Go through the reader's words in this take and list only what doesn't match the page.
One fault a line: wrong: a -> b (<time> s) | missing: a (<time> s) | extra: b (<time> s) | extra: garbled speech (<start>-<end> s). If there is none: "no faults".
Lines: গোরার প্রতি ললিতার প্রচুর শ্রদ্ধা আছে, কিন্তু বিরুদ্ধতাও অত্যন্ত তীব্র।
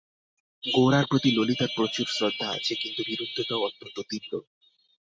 no faults